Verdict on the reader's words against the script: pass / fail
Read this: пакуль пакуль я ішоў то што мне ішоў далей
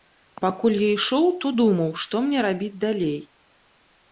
fail